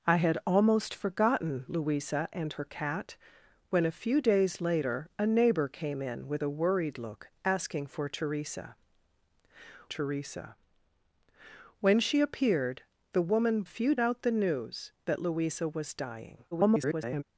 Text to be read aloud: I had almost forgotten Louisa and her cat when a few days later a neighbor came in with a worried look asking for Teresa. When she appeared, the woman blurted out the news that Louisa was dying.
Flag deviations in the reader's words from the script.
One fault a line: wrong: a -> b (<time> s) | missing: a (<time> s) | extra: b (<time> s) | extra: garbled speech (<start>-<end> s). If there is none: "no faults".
extra: Teresa (9.9 s)
wrong: blurted -> few (13.6 s)
extra: garbled speech (16.5-17.2 s)